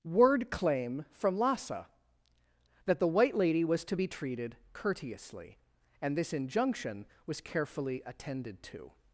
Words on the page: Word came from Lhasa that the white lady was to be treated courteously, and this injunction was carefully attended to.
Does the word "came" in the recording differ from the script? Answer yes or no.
yes